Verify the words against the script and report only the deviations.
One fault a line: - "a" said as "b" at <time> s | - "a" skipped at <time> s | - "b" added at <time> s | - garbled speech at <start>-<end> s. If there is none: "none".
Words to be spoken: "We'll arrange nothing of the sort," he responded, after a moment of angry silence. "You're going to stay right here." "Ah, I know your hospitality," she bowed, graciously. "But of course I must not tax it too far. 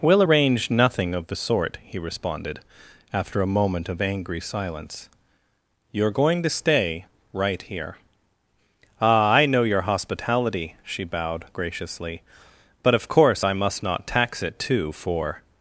- "far" said as "for" at 14.9 s